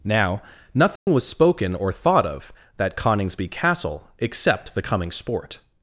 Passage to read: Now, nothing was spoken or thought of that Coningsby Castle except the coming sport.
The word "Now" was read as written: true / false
true